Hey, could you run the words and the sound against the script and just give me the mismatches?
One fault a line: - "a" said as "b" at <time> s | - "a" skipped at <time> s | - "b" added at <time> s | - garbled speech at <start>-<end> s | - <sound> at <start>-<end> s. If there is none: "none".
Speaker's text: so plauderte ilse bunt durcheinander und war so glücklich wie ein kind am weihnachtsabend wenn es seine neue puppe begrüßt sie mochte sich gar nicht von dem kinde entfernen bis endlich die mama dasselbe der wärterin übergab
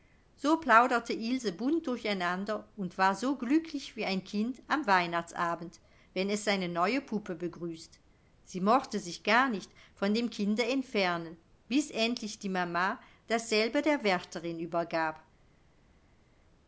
none